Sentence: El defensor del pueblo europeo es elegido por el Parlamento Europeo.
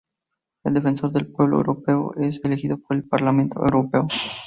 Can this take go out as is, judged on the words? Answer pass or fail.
pass